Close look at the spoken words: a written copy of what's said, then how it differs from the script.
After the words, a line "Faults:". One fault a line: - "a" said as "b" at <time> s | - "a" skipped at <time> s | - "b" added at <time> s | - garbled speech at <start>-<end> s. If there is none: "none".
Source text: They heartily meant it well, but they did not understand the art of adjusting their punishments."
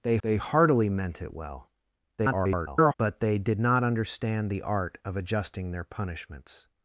They they heartily meant it well, [garbled] but they did not understand the art of adjusting their punishments."
Faults:
- "they" added at 0.2 s
- garbled speech at 2.2-2.9 s